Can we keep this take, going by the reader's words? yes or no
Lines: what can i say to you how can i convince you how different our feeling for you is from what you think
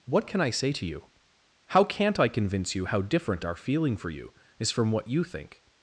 no